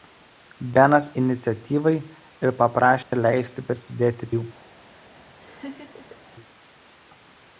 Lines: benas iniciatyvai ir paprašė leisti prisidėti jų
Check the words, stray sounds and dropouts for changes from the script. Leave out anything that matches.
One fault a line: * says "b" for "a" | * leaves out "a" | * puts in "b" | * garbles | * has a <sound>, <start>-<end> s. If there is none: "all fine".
* has a dropout, 3.0-3.1 s
* has a laugh, 5.4-6.2 s